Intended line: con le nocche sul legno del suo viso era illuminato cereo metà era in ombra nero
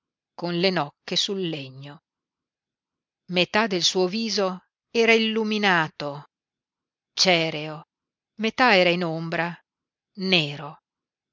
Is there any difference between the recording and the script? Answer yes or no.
yes